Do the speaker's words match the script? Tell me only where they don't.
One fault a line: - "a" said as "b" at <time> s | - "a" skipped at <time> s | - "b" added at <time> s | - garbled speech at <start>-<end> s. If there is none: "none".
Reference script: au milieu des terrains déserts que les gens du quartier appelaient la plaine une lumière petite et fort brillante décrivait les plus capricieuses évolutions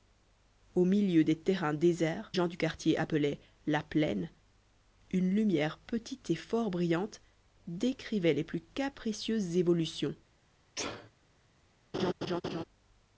- "que les" skipped at 2.3 s